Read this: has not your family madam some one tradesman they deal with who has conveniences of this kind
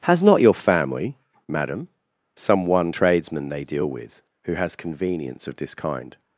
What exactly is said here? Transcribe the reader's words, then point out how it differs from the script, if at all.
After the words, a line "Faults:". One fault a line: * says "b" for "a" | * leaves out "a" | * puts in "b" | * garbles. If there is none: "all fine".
has not your family madam some one tradesman they deal with who has convenience of this kind
Faults:
* says "convenience" for "conveniences"